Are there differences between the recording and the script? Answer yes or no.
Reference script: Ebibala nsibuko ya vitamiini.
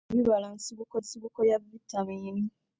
yes